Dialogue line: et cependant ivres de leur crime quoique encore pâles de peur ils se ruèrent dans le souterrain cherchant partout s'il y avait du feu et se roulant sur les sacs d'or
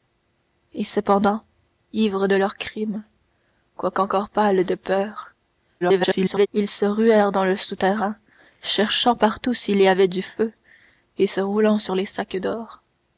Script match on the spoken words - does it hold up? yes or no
no